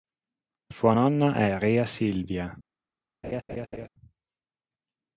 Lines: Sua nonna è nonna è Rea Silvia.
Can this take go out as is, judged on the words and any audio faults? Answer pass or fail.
fail